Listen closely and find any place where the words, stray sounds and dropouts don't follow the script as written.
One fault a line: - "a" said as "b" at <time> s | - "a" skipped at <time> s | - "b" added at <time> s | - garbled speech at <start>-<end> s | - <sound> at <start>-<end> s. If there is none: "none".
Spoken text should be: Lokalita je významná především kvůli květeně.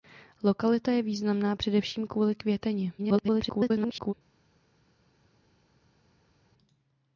- garbled speech at 3.0-4.1 s